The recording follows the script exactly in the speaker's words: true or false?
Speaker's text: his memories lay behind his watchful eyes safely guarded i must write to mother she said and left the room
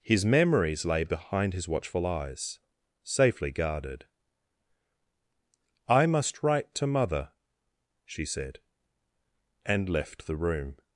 true